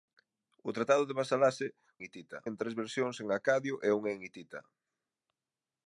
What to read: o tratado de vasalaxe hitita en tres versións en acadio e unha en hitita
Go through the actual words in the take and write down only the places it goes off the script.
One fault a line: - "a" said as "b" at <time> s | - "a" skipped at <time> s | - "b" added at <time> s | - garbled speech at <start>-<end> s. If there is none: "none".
none